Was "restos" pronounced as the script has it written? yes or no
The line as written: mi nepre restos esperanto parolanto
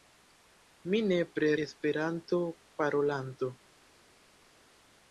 no